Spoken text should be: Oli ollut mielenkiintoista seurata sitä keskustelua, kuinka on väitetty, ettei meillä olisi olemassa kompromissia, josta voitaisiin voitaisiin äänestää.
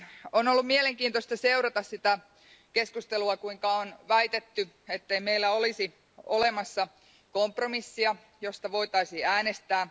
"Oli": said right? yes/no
no